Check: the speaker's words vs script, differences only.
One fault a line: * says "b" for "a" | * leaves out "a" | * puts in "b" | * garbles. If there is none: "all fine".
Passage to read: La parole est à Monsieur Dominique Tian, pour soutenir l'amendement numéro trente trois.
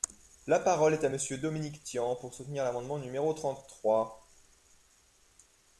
all fine